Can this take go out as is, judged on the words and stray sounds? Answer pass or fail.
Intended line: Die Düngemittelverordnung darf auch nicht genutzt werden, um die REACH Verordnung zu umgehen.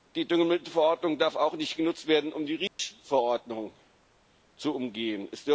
fail